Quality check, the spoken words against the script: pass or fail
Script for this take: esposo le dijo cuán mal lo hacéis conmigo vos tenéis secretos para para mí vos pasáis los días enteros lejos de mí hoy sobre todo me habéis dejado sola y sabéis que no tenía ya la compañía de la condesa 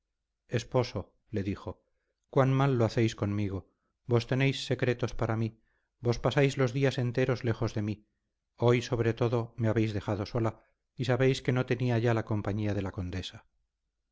fail